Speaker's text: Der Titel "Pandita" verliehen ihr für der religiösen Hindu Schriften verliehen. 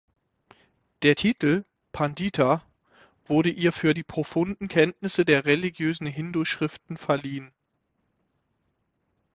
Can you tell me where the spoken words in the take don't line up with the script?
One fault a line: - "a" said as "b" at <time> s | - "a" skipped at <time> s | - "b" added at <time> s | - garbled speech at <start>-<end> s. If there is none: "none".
- "verliehen" said as "wurde" at 3.2 s
- "die profunden Kenntnisse" added at 3.9 s